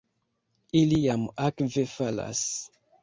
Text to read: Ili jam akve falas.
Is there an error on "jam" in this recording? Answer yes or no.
no